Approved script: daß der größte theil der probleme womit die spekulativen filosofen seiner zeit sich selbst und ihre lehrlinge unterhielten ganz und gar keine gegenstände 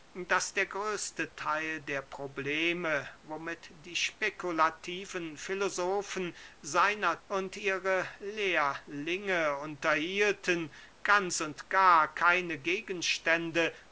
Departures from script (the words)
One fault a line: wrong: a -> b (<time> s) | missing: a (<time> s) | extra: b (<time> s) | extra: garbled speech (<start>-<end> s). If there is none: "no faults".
missing: zeit sich selbst (7.2 s)